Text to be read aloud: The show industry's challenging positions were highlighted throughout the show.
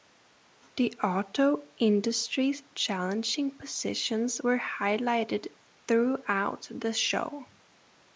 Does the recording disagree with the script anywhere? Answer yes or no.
yes